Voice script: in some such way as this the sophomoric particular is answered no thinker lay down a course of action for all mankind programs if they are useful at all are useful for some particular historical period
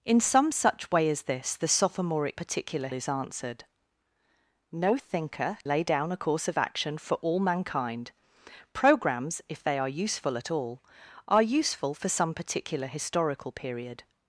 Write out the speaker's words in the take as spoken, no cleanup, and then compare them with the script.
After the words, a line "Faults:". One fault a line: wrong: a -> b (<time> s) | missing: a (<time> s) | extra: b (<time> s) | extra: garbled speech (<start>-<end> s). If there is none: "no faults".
in some such way as this the sophomoric particular is answered no thinker lay down a course of action for all mankind programs if they are useful at all are useful for some particular historical period
Faults:
no faults